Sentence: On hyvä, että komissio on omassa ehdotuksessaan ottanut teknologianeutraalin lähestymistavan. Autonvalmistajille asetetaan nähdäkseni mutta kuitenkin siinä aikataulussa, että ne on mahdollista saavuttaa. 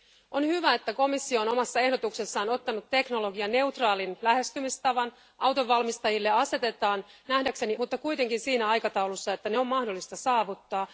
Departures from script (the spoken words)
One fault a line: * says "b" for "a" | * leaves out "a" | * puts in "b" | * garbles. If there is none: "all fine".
all fine